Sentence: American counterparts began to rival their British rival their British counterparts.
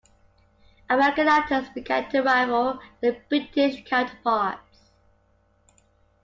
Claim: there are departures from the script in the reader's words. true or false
true